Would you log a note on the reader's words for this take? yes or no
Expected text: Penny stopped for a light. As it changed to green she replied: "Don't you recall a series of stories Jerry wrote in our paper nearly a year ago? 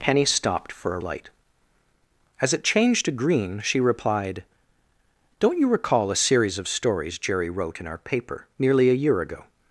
no